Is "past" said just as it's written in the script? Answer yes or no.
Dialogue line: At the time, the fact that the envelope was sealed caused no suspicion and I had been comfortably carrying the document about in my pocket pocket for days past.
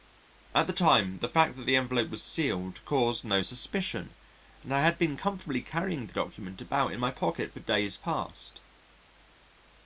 yes